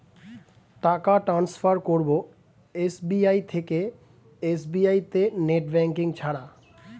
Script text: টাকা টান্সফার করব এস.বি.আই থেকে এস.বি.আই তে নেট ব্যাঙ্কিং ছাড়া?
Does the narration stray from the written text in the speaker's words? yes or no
no